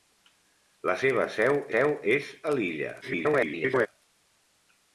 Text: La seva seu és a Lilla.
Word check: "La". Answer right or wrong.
right